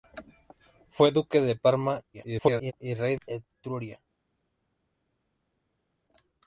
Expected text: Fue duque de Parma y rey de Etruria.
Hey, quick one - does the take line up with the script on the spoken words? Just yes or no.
no